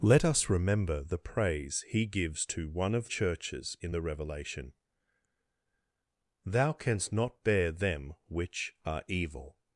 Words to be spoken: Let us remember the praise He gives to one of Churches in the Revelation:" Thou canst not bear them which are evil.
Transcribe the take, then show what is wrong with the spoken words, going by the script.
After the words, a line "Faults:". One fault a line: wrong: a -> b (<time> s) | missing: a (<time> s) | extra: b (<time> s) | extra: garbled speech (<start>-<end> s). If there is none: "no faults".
Let us remember the praise He gives to one of Churches in the Revelation:" Thou canst not bear them which are evil.
Faults:
no faults